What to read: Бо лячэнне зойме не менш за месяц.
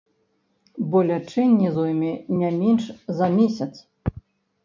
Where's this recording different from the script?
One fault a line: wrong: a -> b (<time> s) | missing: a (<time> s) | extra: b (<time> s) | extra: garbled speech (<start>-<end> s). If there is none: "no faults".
no faults